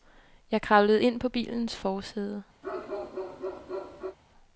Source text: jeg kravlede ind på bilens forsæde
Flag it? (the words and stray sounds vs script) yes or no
yes